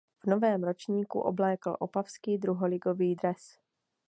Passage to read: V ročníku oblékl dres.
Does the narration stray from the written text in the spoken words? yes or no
yes